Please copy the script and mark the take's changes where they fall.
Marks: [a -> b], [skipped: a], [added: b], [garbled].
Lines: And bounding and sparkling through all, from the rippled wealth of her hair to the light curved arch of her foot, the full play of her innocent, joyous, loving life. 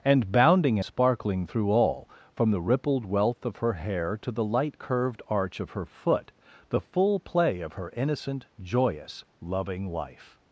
And bounding [skipped: and] sparkling through all, from the rippled wealth of her hair to the light curved arch of her foot, the full play of her innocent, joyous, loving life.